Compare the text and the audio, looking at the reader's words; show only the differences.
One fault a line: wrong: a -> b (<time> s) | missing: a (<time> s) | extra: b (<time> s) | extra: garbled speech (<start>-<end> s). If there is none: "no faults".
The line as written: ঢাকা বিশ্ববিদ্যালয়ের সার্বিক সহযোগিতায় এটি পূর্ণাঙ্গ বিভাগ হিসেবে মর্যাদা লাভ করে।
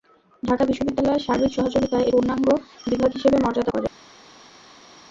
missing: এটি (2.1 s)
missing: লাভ (3.7 s)